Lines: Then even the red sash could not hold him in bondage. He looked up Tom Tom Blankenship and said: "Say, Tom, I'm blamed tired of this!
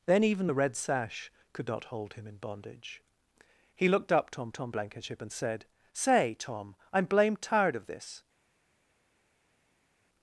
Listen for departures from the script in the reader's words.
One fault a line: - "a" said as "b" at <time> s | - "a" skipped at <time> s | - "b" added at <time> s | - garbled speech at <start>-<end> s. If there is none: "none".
none